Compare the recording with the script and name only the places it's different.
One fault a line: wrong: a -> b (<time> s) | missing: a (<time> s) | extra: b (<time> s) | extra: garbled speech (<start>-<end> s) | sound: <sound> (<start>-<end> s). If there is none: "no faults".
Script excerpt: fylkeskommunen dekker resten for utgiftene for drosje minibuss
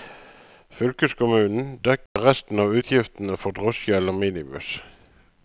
sound: dropout (2.1-2.2 s)
wrong: for -> av (2.6 s)
extra: eller (4.0 s)